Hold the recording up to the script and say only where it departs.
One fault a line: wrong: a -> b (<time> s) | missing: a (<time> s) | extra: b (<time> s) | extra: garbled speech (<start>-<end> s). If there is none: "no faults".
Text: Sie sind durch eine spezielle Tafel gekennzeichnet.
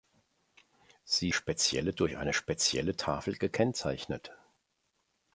wrong: sind -> spezielle (1.3 s)